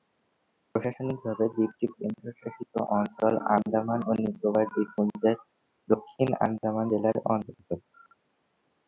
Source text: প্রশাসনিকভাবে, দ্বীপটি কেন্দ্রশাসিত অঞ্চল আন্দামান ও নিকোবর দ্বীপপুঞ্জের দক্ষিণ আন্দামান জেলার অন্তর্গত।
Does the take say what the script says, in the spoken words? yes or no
yes